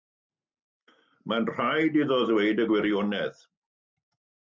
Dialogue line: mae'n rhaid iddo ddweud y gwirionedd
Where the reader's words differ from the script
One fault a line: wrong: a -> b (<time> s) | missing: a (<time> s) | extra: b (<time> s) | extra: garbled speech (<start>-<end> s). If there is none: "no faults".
no faults